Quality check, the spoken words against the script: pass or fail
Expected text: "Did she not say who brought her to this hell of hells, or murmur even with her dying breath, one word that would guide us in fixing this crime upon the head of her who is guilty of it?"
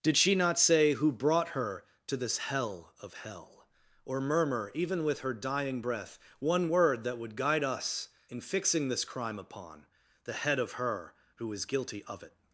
fail